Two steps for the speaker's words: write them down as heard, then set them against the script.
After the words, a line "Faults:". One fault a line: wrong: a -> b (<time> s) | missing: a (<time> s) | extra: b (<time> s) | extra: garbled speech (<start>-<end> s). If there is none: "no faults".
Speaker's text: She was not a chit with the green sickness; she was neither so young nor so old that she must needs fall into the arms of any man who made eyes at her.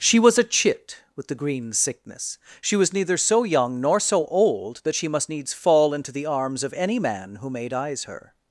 She was a chit with the green sickness; she was neither so young nor so old that she must needs fall into the arms of any man who made eyes her.
Faults:
missing: not (0.4 s)
missing: at (8.0 s)